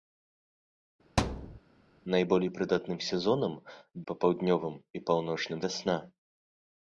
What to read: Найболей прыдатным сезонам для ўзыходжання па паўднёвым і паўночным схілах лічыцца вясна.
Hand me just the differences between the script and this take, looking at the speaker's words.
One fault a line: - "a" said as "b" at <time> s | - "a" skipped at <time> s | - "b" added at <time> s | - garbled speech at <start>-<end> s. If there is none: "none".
- "для ўзыходжання" skipped at 3.5 s
- "схілах лічыцца" skipped at 5.6 s